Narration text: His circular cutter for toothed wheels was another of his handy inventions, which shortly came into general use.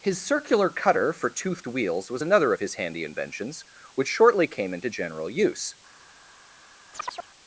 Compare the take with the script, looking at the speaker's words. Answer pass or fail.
pass